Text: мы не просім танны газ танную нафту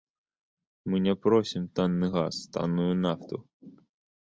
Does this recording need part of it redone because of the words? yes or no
no